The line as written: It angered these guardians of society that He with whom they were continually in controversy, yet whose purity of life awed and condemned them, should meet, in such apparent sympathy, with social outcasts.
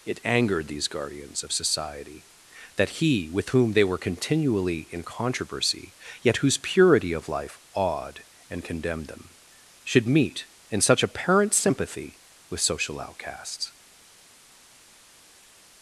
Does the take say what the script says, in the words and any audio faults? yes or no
yes